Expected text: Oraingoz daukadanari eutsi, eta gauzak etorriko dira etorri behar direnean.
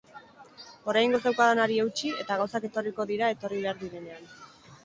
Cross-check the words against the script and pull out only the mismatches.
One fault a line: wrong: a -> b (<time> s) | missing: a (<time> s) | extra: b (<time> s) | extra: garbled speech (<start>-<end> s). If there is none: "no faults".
no faults